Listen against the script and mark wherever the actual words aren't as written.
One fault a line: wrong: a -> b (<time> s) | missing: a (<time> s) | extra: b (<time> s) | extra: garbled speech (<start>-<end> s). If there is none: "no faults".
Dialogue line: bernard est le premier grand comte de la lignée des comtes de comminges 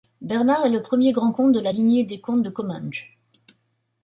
no faults